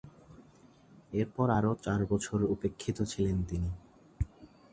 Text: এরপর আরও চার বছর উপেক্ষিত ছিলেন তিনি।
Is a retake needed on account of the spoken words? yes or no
no